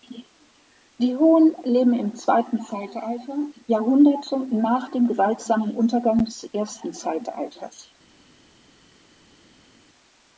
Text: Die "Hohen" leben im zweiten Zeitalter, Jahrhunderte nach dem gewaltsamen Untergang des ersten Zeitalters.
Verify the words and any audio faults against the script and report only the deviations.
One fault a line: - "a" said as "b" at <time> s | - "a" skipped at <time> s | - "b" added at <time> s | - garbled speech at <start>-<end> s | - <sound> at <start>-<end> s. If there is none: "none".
none